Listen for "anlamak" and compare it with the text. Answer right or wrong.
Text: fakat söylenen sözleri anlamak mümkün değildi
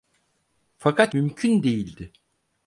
wrong